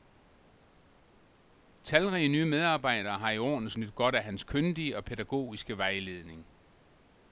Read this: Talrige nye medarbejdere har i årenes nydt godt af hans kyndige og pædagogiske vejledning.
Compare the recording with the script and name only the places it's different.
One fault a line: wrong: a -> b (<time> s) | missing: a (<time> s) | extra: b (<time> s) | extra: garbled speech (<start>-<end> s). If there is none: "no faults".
no faults